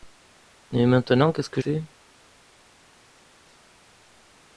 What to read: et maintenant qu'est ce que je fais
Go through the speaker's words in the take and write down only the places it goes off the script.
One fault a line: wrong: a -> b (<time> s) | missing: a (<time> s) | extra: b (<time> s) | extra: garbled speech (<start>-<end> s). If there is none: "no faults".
missing: je (1.6 s)